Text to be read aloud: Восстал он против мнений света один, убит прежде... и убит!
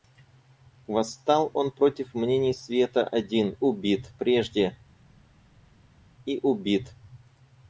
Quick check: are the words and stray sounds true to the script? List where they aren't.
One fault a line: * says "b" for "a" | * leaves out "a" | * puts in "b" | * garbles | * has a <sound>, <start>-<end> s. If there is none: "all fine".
all fine